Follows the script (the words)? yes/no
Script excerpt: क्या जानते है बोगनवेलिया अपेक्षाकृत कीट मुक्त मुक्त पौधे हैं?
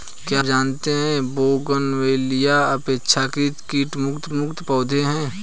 yes